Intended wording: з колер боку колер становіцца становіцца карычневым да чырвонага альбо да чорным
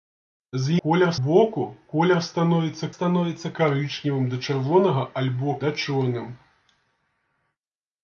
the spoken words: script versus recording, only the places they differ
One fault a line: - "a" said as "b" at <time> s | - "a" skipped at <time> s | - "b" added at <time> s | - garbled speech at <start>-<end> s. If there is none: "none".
none